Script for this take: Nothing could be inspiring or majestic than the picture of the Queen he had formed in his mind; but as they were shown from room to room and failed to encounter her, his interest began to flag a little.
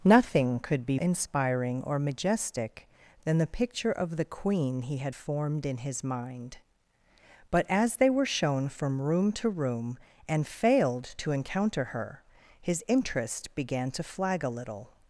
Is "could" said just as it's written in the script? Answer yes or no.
yes